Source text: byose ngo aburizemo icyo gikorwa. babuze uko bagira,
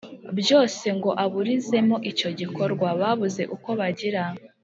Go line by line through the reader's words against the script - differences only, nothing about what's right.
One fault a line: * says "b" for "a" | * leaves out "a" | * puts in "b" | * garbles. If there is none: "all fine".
all fine